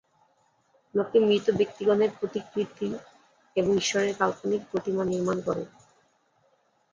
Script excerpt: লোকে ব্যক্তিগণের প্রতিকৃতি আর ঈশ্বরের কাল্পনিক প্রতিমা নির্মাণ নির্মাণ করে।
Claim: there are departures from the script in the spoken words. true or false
true